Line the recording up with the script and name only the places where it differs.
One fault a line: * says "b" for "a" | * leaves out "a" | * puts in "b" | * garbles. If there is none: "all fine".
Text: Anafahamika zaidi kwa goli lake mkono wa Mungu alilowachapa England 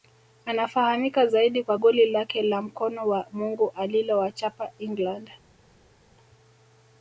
* puts in "la"